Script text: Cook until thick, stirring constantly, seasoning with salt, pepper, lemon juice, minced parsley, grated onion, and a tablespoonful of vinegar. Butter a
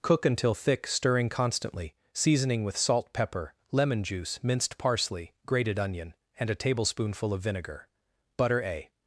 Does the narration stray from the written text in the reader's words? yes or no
no